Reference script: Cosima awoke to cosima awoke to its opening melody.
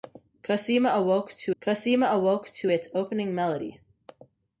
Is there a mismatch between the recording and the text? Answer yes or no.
no